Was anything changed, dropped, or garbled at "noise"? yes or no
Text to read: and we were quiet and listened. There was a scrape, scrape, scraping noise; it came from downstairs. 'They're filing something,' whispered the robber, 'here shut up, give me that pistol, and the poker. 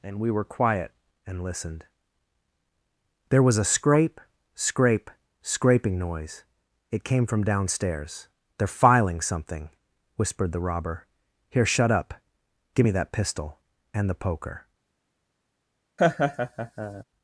no